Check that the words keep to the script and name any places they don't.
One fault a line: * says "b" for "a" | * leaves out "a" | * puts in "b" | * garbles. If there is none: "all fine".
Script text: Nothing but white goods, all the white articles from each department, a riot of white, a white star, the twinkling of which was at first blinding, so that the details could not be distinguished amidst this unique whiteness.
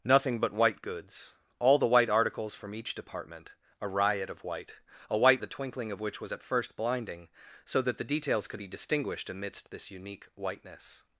* leaves out "star"
* leaves out "not"